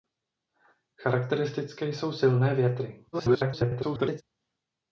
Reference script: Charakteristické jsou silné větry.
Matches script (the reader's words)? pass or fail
fail